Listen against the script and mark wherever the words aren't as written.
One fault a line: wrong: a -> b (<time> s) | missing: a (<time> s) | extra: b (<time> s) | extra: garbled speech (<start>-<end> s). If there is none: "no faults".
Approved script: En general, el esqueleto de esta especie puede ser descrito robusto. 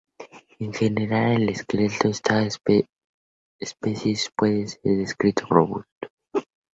no faults